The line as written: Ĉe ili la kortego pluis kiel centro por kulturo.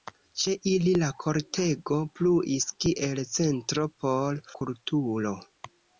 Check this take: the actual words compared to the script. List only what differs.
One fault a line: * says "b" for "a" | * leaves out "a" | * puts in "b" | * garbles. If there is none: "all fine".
all fine